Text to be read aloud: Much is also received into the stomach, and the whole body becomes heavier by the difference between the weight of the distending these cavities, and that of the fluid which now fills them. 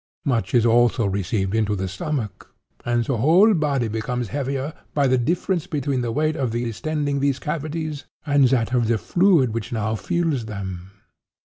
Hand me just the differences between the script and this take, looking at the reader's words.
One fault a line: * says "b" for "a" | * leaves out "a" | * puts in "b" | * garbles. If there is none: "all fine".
all fine